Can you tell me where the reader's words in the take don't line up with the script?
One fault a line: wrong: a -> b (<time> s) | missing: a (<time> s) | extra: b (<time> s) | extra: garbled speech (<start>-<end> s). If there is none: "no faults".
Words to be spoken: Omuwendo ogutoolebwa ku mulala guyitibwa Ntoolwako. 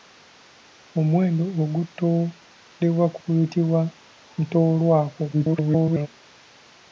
missing: mulala (3.2 s)
extra: garbled speech (5.3-6.1 s)